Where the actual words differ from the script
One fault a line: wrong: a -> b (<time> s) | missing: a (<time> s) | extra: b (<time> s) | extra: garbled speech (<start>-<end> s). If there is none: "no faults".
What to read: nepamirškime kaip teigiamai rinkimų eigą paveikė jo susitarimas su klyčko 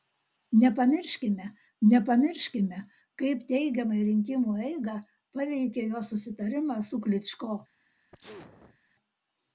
extra: nepamirškime (1.9 s)